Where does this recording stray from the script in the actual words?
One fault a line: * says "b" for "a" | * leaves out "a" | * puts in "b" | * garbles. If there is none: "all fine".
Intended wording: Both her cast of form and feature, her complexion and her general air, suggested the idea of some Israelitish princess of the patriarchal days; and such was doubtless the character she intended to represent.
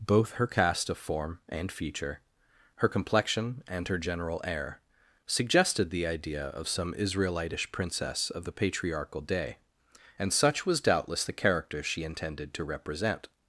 * says "day" for "days"